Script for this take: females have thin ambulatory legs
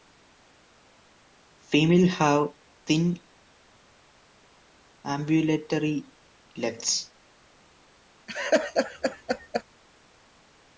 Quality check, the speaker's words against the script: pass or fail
pass